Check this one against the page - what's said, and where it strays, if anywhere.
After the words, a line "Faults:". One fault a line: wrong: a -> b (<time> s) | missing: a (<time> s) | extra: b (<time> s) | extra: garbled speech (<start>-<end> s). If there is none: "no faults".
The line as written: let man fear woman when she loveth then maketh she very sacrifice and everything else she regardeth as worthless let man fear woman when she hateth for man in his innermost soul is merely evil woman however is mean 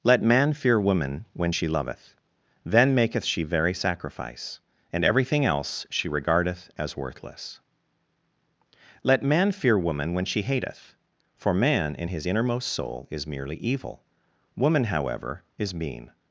let man fear woman when she loveth then maketh she very sacrifice and everything else she regardeth as worthless let man fear woman when she hateth for man in his innermost soul is merely evil woman however is mean
Faults:
no faults